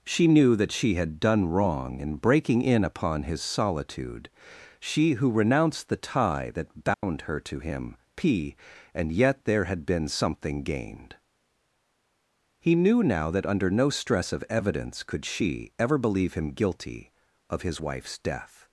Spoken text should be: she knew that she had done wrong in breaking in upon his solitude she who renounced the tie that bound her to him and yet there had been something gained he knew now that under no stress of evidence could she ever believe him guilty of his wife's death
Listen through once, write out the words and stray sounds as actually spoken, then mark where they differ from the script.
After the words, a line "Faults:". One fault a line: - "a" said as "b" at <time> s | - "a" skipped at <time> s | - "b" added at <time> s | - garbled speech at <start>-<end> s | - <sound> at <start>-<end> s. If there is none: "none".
she knew that she had done wrong in breaking in upon his solitude she who renounced the tie that bound her to him p and yet there had been something gained he knew now that under no stress of evidence could she ever believe him guilty of his wife's death
Faults:
- dropout at 6.9-7.0 s
- "p" added at 8.2 s